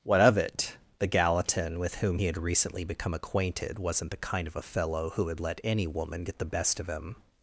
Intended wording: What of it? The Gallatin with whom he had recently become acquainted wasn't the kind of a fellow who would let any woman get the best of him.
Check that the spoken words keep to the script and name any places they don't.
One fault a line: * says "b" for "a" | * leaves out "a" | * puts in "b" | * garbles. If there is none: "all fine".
all fine